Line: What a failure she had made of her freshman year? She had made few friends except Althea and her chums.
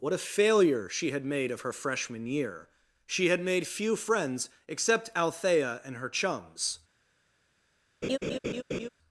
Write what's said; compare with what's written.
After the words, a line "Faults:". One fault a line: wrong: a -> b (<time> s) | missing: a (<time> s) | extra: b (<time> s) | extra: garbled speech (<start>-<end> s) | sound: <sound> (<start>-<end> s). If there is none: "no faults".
What a failure she had made of her freshman year? She had made few friends except Althea and her chums.
Faults:
sound: laugh (8.0-8.9 s)